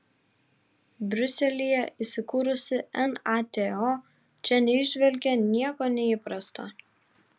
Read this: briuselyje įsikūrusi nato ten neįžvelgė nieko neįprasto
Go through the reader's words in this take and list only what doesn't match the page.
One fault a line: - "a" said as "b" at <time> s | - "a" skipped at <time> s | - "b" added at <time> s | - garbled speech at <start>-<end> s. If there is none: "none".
- "ten" said as "čia" at 4.5 s